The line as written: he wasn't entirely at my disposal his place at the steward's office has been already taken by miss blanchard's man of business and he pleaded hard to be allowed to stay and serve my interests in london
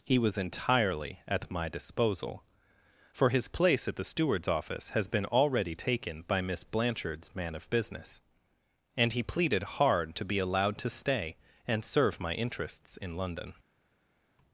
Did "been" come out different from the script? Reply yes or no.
no